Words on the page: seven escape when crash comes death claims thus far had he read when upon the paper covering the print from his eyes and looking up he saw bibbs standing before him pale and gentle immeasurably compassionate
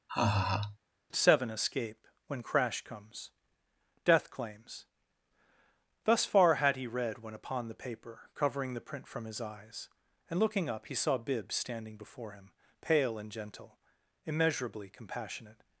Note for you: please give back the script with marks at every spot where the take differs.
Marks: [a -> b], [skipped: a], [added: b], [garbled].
seven escape when crash comes death claims thus far had he read when upon the paper covering the print from his eyes and looking up he saw bibbs standing before him pale and gentle immeasurably compassionate